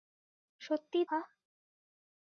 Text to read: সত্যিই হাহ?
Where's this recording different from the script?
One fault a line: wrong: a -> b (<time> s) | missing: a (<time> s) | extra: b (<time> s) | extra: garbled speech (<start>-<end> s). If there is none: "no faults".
no faults